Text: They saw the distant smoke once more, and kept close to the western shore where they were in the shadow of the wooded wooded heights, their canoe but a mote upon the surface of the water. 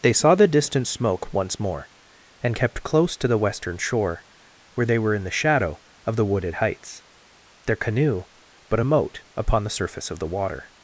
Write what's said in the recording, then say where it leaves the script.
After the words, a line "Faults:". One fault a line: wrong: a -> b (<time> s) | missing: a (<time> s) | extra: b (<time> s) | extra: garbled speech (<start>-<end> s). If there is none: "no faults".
They saw the distant smoke once more, and kept close to the western shore where they were in the shadow of the wooded heights, their canoe but a mote upon the surface of the water.
Faults:
missing: wooded (6.5 s)